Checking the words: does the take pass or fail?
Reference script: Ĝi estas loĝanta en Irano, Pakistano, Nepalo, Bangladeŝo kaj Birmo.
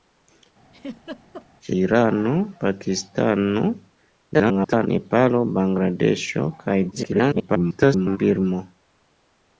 fail